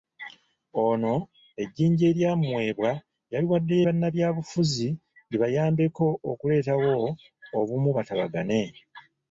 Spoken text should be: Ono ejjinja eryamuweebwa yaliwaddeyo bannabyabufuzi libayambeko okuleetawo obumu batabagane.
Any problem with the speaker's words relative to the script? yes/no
no